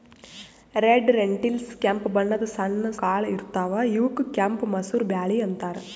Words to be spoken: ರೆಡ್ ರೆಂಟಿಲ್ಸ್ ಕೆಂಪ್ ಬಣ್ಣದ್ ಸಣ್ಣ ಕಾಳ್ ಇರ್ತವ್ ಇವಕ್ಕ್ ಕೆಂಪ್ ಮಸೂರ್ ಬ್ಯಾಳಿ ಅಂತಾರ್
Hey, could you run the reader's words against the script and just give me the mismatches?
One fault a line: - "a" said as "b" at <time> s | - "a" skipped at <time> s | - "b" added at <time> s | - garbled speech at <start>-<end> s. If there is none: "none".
none